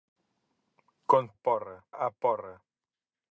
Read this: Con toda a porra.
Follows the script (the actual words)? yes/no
no